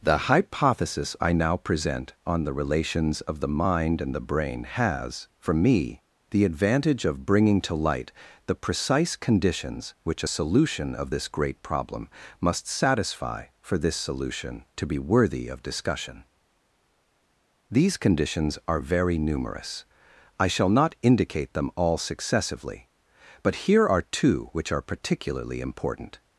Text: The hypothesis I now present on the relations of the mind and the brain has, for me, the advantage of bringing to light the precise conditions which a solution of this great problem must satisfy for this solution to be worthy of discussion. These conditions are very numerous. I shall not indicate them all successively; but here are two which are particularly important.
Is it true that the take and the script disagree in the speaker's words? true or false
false